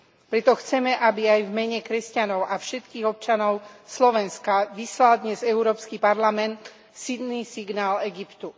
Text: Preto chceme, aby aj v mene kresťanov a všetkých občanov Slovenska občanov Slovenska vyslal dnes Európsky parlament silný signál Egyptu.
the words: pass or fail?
fail